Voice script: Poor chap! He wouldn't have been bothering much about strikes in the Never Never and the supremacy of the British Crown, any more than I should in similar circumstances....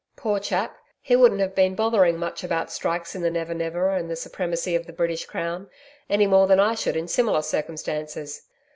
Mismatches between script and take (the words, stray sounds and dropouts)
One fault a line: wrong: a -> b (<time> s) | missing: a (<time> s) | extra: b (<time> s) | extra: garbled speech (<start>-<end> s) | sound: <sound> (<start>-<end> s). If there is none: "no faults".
no faults